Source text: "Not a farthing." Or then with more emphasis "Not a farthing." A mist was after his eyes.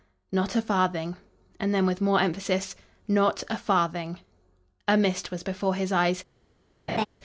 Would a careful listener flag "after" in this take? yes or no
yes